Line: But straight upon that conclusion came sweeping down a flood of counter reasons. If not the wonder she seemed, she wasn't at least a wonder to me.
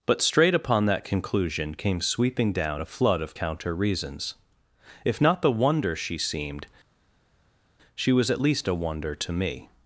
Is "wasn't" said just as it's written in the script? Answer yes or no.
no